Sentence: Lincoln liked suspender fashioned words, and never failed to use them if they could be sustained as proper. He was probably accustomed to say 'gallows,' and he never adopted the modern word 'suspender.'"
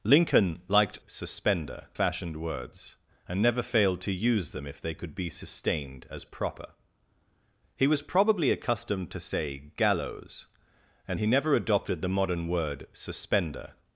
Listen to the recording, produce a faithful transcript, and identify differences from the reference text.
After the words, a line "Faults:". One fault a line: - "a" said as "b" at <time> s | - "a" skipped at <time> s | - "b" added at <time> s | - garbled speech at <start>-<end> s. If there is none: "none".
Lincoln liked suspender fashioned words, and never failed to use them if they could be sustained as proper. He was probably accustomed to say 'gallows,' and he never adopted the modern word 'suspender.'"
Faults:
none